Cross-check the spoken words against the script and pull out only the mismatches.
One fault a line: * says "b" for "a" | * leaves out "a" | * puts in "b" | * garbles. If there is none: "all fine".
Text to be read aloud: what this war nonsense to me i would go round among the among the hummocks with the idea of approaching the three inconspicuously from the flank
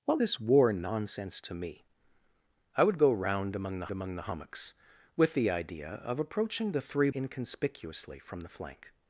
all fine